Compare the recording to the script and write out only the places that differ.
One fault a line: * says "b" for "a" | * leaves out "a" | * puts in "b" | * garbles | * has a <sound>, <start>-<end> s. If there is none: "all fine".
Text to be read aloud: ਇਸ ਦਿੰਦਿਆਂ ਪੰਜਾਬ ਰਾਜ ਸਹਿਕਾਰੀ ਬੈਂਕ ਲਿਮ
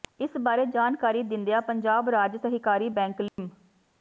* puts in "ਬਾਰੇ ਜਾਣਕਾਰੀ"
* has a dropout, 3.3-3.4 s